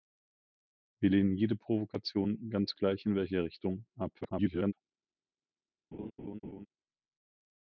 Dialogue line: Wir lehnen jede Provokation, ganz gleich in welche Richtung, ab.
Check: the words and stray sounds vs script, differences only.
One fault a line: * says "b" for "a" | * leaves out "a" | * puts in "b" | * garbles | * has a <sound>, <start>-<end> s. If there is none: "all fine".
* garbles
* has a laugh, 5.9-6.7 s